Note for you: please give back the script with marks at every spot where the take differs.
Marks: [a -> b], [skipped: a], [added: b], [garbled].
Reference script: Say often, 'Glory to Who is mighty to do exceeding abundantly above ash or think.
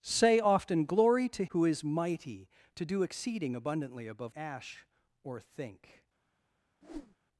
Say often, 'Glory to Who is mighty to do exceeding abundantly above ash or think.